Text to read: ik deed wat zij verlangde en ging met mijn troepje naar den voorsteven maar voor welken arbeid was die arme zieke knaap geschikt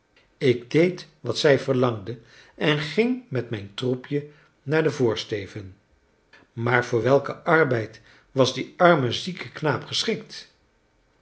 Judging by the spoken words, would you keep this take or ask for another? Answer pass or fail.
pass